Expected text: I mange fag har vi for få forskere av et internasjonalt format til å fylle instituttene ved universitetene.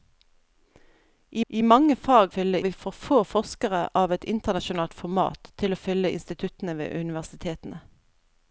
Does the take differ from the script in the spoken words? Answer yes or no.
yes